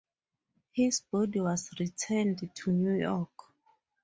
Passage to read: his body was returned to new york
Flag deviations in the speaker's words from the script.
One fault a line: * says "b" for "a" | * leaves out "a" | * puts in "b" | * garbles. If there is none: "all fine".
all fine